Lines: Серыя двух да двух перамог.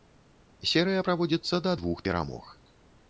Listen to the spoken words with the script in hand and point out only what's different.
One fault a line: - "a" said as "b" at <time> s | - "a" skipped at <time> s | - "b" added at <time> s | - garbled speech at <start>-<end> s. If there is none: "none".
- "двух" said as "праводзіцца" at 1.1 s